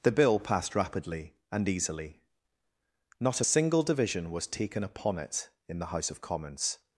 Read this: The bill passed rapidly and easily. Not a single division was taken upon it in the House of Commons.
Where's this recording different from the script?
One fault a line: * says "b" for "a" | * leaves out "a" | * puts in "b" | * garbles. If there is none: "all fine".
all fine